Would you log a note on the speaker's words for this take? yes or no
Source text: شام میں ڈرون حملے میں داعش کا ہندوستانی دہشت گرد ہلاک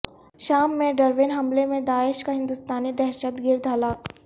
no